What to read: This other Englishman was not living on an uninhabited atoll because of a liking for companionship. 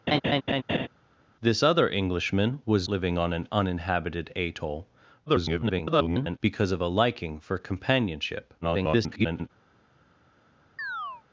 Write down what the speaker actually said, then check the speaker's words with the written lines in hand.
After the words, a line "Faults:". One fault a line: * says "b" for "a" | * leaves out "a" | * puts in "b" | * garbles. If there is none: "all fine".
This other Englishman was living on an uninhabited atoll [garbled] because of a liking for companionship. [garbled]
Faults:
* leaves out "not"
* garbles
* garbles